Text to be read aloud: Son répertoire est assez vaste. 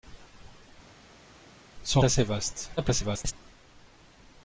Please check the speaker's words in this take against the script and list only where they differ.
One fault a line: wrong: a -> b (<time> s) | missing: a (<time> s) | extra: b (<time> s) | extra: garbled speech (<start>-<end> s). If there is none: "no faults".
missing: répertoire est (2.0 s)
extra: garbled speech (2.8-3.3 s)